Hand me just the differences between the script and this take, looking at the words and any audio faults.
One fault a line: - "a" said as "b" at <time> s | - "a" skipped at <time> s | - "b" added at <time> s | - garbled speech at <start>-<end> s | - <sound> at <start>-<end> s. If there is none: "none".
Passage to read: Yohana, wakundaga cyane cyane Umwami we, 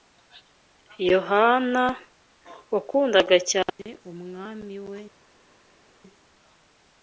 - "cyane" skipped at 3.9 s